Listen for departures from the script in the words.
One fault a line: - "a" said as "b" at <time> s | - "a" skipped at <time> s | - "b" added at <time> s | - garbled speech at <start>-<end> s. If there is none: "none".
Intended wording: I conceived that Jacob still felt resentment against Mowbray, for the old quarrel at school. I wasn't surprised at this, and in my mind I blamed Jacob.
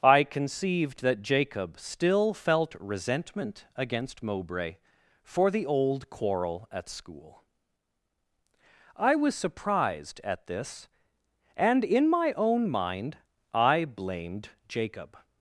- "wasn't" said as "was" at 9.2 s
- "own" added at 12.3 s